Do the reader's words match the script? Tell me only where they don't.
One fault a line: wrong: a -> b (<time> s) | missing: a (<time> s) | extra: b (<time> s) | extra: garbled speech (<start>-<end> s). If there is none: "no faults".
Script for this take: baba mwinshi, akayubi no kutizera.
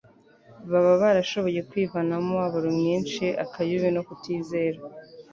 extra: barashoboye kwivanamo umubabaro (1.0 s)